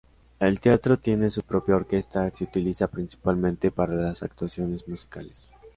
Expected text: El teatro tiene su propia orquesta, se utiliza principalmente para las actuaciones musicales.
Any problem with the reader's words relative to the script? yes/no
no